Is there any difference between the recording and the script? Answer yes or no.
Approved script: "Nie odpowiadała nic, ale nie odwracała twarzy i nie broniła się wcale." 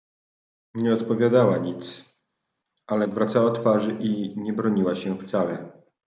yes